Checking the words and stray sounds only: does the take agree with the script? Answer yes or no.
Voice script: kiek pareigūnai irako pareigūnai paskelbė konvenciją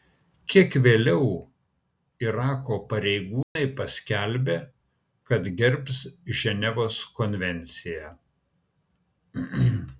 no